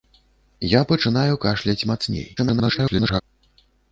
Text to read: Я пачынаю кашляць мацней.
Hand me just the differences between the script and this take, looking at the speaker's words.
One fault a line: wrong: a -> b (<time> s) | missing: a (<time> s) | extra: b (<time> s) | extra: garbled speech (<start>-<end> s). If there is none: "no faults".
extra: garbled speech (2.4-3.2 s)